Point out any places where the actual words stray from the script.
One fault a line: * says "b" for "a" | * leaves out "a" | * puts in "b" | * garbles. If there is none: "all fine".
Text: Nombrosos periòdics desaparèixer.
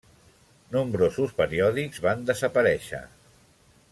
* puts in "van"